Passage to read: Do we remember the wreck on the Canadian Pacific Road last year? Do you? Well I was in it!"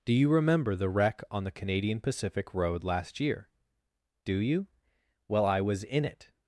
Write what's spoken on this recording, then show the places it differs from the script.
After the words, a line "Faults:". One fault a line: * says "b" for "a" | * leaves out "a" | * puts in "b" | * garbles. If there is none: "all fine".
Do you remember the wreck on the Canadian Pacific Road last year? Do you? Well I was in it!"
Faults:
* says "you" for "we"